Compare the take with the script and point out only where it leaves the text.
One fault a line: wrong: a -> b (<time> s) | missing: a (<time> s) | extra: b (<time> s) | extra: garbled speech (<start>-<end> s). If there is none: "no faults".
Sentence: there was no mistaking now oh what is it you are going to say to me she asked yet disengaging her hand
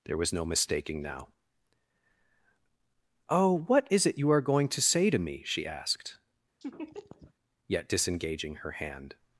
no faults